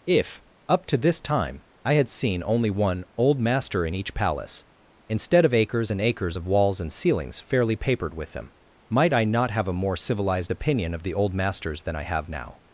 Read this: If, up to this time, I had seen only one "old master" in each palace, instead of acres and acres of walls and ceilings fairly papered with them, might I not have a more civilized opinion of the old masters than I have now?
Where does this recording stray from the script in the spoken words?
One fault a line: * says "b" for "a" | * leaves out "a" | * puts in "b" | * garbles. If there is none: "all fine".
all fine